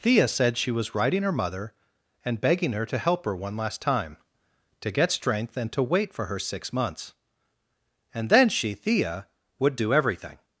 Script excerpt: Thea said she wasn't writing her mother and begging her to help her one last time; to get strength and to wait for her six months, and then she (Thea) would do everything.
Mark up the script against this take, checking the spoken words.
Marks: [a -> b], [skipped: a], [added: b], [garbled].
Thea said she [wasn't -> was] writing her mother and begging her to help her one last time; to get strength and to wait for her six months, and then she (Thea) would do everything.